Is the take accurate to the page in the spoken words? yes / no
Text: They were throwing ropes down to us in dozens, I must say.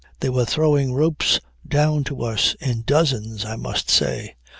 yes